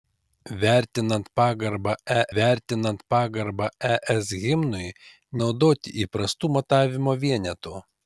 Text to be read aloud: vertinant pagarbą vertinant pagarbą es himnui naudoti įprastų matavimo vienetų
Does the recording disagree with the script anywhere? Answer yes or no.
no